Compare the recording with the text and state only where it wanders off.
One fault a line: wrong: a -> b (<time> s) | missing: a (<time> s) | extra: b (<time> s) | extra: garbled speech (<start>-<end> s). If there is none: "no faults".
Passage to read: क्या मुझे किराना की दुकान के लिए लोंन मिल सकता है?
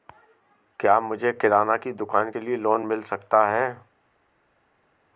no faults